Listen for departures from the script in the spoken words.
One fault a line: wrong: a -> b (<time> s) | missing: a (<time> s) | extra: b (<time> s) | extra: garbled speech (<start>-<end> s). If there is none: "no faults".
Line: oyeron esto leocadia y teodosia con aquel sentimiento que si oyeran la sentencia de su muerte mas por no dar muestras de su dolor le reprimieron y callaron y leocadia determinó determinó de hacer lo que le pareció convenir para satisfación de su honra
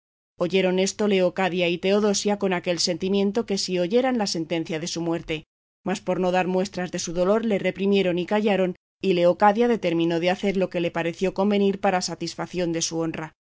missing: determinó (10.2 s)